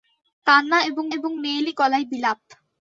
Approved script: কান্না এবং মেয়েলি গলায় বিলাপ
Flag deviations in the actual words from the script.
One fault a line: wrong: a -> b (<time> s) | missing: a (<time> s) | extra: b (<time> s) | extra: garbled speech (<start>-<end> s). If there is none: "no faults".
extra: এবং (1.1 s)